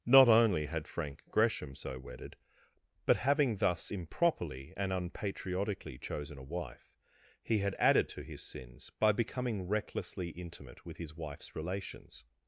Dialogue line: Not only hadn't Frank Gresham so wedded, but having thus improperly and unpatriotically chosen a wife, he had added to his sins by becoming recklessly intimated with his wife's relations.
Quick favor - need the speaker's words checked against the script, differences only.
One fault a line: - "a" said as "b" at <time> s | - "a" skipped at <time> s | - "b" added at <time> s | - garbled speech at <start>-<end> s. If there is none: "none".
- "hadn't" said as "had" at 0.7 s
- "intimated" said as "intimate" at 10.3 s